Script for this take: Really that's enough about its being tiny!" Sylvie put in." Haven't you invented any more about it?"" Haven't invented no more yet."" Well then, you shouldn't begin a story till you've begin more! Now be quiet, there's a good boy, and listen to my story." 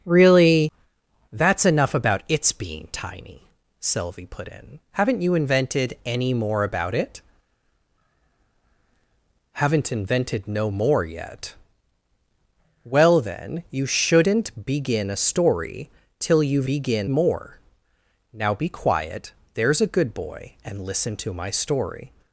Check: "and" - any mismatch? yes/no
no